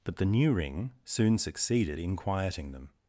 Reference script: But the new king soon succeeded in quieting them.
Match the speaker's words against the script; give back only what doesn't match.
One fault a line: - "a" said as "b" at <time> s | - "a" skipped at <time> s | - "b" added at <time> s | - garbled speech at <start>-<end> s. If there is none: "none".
- "king" said as "ring" at 0.5 s